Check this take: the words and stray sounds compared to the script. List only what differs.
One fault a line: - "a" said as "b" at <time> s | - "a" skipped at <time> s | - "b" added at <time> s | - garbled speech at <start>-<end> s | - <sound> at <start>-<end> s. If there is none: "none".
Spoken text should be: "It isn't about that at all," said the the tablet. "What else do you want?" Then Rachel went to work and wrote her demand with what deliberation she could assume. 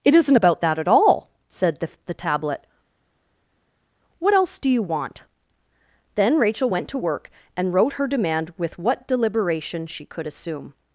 none